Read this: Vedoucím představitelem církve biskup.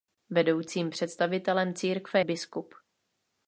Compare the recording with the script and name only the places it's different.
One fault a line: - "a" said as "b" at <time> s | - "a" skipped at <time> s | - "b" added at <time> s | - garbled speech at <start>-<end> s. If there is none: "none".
none